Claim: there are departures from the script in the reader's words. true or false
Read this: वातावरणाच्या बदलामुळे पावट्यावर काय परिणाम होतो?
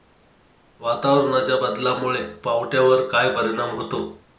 false